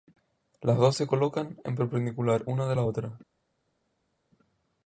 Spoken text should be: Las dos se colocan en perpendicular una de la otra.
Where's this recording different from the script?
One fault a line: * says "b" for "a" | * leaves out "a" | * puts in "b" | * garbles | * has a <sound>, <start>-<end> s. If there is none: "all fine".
all fine